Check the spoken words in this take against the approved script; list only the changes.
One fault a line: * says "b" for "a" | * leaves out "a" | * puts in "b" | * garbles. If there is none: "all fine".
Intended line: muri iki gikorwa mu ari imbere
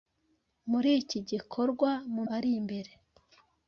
all fine